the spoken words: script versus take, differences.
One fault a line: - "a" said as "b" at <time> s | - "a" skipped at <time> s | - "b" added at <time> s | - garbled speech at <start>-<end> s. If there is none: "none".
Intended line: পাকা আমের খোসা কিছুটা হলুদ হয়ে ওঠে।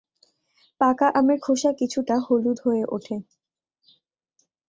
none